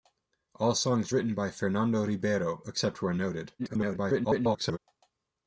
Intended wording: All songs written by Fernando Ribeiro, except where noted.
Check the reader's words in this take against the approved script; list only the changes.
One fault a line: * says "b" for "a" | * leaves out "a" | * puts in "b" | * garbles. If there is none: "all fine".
* garbles